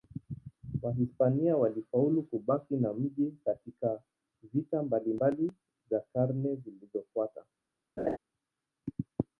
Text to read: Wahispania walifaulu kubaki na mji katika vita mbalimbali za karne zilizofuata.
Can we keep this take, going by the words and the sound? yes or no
no